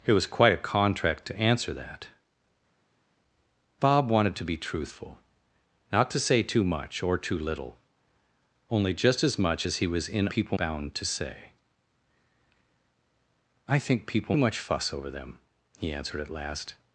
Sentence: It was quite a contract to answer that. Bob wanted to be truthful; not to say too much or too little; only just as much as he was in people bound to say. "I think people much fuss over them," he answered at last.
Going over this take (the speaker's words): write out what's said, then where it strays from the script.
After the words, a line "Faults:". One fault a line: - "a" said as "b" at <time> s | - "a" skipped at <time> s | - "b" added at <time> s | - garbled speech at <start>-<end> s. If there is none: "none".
It was quite a contract to answer that. Bob wanted to be truthful; not to say too much or too little; only just as much as he was in people bound to say. "I think people much fuss over them," he answered at last.
Faults:
none